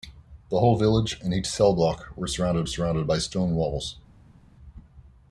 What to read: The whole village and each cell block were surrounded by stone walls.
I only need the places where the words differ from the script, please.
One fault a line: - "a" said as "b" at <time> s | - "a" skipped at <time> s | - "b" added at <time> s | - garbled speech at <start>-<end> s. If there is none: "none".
- "surrounded" added at 2.6 s